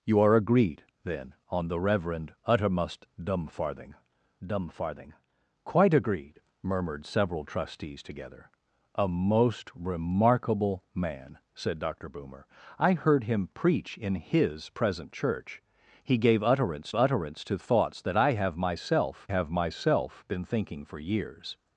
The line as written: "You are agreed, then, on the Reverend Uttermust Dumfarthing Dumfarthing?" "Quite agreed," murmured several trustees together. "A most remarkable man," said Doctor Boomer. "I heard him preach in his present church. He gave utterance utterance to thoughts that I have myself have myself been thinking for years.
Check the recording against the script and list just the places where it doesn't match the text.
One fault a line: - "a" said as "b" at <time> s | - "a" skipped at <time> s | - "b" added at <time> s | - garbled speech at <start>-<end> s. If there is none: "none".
none